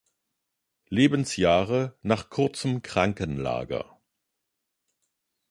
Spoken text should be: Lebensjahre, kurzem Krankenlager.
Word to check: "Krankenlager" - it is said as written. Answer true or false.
true